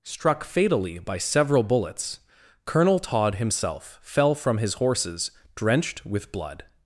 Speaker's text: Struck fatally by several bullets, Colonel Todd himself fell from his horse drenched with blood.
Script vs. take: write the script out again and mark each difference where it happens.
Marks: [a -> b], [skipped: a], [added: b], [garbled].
Struck fatally by several bullets, Colonel Todd himself fell from his [horse -> horses] drenched with blood.